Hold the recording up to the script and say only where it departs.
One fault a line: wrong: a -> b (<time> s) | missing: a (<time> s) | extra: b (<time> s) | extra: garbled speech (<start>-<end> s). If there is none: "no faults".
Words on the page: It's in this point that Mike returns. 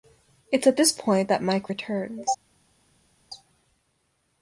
wrong: in -> at (0.7 s)